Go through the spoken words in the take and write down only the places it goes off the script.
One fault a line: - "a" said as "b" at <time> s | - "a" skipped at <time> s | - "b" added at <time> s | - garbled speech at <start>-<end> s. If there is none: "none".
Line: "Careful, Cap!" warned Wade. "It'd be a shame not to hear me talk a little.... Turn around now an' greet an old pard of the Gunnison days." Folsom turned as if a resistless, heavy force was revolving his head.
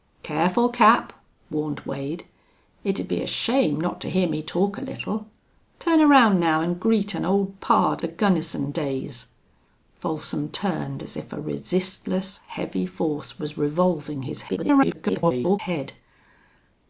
- "of" skipped at 8.0 s
- garbled speech at 14.5-15.6 s